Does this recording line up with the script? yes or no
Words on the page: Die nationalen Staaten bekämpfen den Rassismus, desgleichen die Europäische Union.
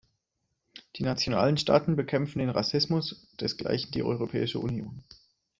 yes